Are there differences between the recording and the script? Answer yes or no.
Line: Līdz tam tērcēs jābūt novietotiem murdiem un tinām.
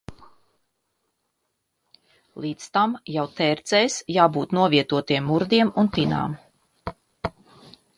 yes